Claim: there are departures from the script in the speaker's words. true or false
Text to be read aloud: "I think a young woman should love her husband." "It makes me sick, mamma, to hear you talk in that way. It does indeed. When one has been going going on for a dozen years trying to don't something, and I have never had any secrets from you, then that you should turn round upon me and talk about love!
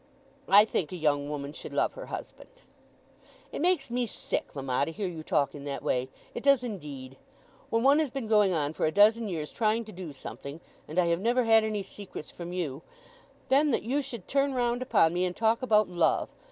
true